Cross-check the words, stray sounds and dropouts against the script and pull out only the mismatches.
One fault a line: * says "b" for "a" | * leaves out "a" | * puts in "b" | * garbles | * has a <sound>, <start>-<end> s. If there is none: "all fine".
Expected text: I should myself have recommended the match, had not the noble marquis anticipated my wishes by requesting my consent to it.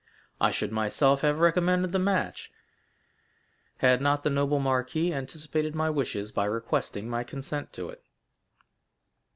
all fine